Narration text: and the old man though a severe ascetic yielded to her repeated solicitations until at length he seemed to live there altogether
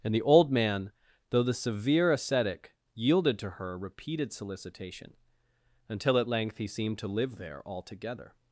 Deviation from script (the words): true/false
true